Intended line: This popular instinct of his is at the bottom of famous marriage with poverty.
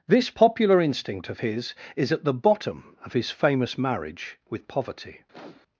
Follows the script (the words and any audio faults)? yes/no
no